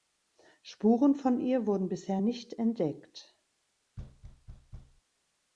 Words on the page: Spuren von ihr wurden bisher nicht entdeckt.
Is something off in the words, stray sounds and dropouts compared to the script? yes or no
yes